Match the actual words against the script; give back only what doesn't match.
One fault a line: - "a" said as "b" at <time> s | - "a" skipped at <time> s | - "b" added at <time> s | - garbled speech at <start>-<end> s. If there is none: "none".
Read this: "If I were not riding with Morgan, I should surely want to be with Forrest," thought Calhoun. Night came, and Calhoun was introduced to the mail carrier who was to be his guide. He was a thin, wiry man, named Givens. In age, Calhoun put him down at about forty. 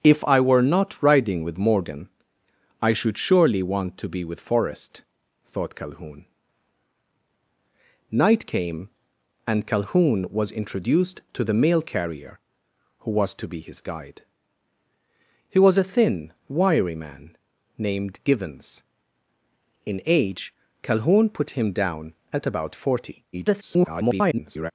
- garbled speech at 23.3-24.7 s